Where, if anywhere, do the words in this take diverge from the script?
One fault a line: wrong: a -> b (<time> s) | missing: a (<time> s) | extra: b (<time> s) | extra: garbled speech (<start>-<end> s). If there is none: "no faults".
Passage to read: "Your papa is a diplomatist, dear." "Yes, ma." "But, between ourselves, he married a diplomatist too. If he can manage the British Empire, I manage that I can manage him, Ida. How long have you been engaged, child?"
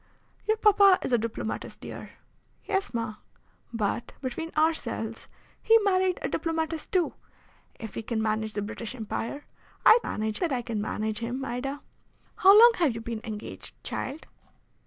no faults